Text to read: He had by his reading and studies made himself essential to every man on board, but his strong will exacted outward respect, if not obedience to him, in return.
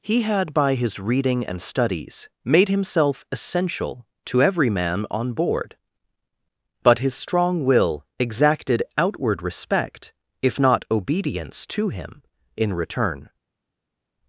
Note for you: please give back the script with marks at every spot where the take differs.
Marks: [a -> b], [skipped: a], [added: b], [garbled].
He had by his reading and studies made himself essential to every man on board, but his strong will exacted outward respect, if not obedience to him, in return.